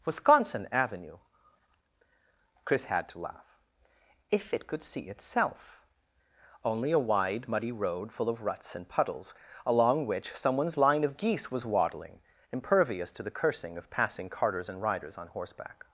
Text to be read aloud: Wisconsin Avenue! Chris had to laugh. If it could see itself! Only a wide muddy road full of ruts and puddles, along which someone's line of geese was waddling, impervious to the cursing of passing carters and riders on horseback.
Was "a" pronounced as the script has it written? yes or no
yes